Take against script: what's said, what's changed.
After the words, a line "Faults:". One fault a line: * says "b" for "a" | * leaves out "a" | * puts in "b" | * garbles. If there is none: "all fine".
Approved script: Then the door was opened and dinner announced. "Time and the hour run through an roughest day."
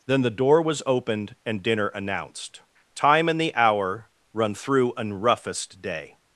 Then the door was opened and dinner announced. "Time and the hour run through an roughest day."
Faults:
all fine